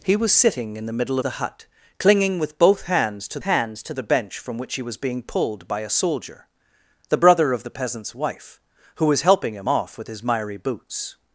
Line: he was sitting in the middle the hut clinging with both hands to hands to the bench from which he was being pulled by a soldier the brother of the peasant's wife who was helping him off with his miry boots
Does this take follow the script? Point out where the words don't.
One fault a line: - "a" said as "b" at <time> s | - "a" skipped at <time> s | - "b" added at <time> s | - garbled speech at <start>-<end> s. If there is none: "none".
none